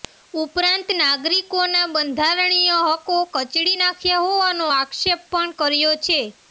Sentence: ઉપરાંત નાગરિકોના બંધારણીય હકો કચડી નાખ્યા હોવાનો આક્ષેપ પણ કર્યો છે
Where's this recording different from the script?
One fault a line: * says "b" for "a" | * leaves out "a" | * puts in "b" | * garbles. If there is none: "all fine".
all fine